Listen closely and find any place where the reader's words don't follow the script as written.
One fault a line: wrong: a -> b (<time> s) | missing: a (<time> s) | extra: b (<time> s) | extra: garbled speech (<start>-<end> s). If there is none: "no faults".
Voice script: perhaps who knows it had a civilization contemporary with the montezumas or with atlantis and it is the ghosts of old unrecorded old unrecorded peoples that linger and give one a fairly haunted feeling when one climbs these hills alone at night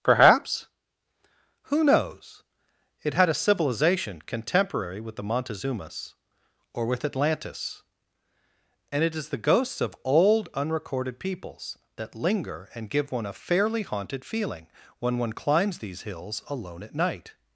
missing: old unrecorded (11.2 s)